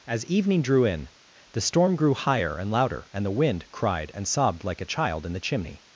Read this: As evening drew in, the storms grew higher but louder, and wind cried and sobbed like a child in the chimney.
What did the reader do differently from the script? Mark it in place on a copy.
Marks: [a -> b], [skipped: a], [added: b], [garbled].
As evening drew in, the [storms -> storm] grew higher [but -> and] louder, and [added: the] wind cried and sobbed like a child in the chimney.